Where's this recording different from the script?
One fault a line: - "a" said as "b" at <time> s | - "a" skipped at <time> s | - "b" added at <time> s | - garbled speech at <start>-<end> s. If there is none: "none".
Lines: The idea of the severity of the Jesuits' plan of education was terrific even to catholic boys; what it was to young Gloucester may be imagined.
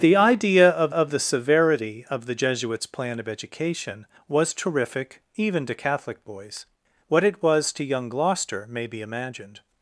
- "of" added at 0.9 s